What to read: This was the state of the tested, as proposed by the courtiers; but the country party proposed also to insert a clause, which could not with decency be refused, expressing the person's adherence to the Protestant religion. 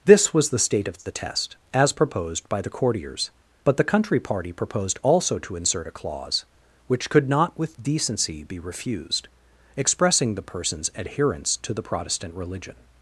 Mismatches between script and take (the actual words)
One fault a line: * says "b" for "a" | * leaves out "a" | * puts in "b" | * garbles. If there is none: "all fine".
* says "test" for "tested"